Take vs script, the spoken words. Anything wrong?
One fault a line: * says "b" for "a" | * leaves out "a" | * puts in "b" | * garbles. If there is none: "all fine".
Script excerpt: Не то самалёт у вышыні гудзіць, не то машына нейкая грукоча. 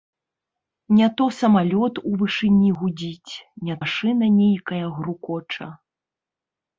* leaves out "то"